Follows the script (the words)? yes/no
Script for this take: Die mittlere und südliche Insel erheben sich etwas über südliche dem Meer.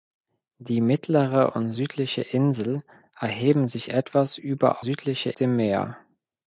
yes